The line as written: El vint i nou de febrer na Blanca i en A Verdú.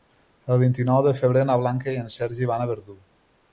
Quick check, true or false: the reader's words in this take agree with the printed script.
false